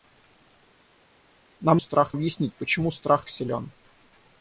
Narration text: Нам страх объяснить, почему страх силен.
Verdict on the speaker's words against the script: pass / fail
pass